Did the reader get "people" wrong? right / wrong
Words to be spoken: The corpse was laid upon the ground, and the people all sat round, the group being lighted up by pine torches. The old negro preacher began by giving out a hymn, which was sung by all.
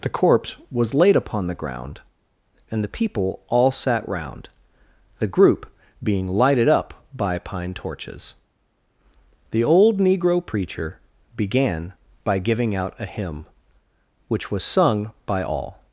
right